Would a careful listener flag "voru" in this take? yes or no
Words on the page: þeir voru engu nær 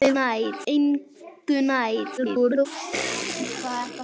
yes